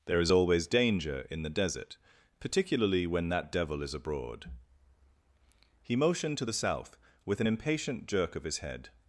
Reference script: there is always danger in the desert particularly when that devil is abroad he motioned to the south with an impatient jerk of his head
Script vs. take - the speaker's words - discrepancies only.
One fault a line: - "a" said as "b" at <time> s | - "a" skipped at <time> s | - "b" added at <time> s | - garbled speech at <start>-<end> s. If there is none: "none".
none